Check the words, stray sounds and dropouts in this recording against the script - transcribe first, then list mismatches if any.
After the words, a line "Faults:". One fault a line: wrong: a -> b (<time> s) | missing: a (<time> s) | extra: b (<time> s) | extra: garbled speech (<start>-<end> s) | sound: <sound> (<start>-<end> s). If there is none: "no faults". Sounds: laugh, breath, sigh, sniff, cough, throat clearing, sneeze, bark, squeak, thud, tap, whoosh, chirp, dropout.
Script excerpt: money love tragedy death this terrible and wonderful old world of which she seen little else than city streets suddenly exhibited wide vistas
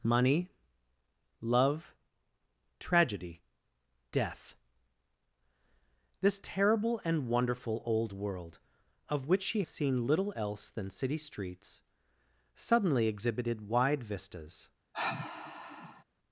money love tragedy death this terrible and wonderful old world of which she seen little else than city streets suddenly exhibited wide vistas
Faults:
sound: sigh (14.9-16.0 s)